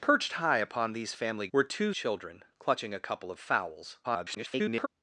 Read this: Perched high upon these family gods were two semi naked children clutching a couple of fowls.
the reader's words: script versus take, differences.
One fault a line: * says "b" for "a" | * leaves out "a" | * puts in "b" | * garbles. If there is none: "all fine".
* leaves out "gods"
* leaves out "semi naked"
* garbles